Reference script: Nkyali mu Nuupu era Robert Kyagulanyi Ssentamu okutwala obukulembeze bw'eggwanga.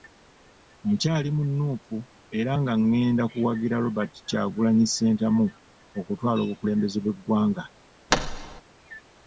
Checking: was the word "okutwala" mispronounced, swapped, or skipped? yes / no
no